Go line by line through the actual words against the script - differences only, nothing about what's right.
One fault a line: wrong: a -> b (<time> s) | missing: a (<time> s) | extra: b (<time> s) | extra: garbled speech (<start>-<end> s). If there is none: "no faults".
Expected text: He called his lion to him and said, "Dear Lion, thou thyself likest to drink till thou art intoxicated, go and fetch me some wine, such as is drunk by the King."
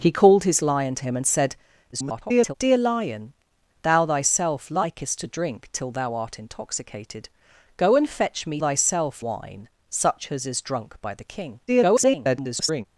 extra: garbled speech (1.9-2.5 s)
wrong: some -> thyself (8.6 s)
extra: garbled speech (11.7-12.9 s)